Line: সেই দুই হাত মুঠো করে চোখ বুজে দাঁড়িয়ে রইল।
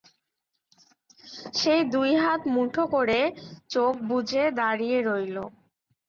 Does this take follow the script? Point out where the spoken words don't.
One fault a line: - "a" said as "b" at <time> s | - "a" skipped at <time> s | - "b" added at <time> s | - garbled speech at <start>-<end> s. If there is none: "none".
none